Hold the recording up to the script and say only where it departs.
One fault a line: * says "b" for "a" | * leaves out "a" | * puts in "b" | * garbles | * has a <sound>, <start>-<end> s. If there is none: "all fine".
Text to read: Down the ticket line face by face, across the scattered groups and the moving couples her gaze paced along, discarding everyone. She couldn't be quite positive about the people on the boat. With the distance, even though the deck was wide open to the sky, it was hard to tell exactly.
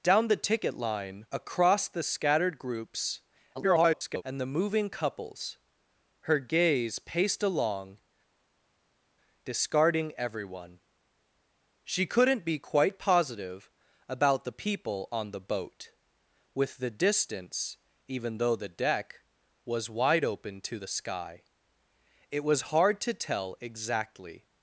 * leaves out "face by face"
* garbles